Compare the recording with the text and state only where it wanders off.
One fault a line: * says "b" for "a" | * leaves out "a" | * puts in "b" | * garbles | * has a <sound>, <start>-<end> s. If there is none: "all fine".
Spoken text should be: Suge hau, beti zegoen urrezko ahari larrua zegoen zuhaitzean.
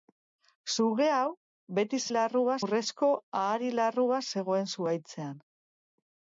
* says "larrua" for "zegoen"